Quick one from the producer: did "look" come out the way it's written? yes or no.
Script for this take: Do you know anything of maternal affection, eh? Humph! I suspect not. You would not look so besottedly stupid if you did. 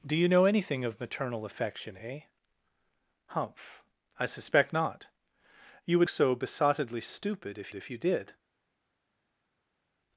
no